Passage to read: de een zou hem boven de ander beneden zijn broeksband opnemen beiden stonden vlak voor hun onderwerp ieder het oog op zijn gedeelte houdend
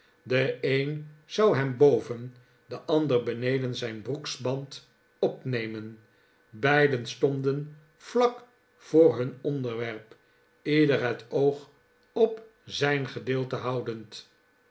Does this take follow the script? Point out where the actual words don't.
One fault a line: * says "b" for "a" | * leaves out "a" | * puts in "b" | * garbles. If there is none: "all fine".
all fine